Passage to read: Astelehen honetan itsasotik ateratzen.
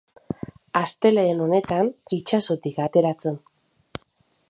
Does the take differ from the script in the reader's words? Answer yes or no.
no